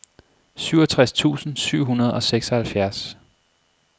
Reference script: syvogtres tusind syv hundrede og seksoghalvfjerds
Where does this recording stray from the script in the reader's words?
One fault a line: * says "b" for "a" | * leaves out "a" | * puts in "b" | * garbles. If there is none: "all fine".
all fine